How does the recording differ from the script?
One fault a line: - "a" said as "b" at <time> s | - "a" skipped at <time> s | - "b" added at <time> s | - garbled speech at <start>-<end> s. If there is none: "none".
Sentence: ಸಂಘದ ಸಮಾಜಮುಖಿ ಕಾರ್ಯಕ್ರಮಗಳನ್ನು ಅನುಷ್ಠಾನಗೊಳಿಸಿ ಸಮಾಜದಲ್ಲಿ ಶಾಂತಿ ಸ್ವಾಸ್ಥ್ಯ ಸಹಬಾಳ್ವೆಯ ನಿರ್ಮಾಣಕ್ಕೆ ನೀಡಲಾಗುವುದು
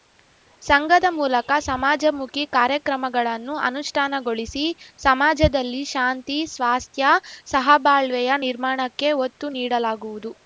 - "ಮೂಲಕ" added at 1.2 s
- "ಒತ್ತು" added at 9.3 s